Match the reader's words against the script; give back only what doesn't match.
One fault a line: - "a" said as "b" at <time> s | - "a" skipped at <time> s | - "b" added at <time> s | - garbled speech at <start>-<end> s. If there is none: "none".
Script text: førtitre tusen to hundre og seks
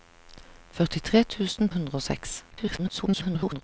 - "to" skipped at 1.7 s
- garbled speech at 2.5-3.6 s